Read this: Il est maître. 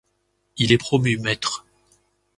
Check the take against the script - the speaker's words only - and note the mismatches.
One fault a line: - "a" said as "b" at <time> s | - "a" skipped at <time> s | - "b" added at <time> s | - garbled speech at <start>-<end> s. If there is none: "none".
- "promu" added at 0.7 s